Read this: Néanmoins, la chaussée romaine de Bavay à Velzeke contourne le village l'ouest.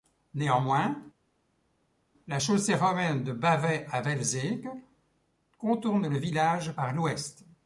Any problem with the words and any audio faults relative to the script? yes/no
yes